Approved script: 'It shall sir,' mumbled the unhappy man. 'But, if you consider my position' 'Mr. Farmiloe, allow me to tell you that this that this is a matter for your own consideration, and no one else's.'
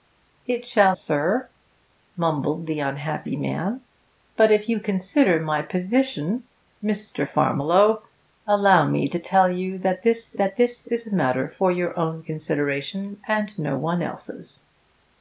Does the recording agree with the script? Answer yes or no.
yes